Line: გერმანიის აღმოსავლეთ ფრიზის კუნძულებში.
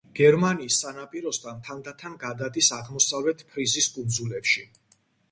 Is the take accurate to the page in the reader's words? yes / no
no